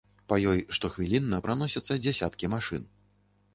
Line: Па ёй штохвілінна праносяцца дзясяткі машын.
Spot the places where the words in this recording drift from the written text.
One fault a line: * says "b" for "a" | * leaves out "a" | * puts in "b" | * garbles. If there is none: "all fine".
all fine